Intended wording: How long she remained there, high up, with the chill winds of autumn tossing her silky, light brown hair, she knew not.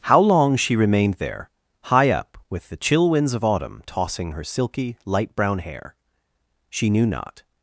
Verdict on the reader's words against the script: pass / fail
pass